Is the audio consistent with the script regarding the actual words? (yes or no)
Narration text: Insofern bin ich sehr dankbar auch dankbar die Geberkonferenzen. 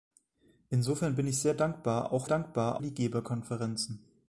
yes